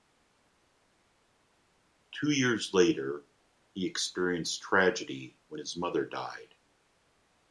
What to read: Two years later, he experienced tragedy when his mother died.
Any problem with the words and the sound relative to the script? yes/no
no